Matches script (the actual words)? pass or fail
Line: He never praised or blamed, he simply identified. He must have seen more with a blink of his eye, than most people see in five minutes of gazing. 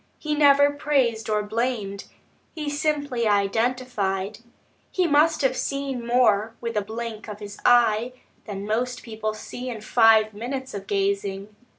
pass